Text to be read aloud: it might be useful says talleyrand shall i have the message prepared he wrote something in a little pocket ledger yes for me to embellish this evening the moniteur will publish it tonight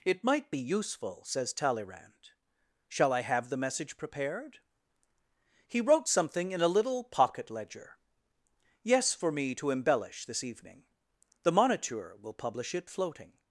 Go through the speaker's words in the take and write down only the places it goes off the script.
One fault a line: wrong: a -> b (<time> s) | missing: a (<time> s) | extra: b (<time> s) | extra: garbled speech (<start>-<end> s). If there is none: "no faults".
wrong: tonight -> floating (12.9 s)